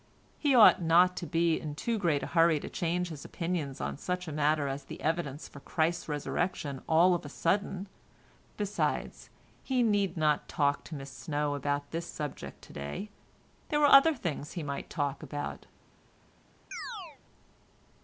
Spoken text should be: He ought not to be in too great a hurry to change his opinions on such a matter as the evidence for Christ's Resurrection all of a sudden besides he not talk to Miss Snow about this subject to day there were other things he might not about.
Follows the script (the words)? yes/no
no